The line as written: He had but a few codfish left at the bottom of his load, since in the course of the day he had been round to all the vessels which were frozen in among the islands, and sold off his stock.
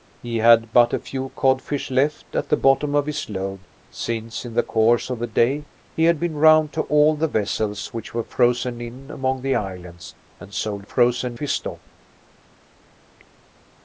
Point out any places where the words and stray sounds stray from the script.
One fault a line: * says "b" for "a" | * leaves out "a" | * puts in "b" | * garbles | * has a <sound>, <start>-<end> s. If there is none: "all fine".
* says "frozen" for "off"